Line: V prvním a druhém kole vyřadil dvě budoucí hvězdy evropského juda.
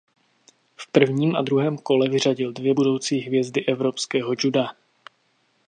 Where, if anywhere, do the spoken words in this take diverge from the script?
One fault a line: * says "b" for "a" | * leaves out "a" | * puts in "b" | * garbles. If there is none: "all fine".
all fine